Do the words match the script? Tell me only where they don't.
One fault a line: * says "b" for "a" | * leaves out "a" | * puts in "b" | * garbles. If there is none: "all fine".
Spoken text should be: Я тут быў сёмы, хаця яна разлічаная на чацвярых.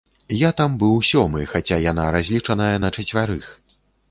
* says "там" for "тут"